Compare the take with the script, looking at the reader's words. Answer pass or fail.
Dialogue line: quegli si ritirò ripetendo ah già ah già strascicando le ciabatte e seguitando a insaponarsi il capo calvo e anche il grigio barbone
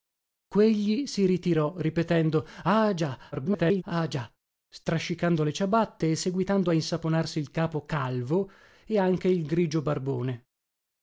fail